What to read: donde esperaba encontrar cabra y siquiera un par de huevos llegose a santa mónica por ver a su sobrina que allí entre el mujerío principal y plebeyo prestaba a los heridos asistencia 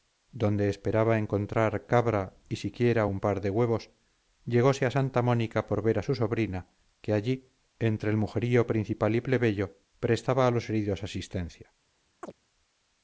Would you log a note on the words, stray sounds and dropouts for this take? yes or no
yes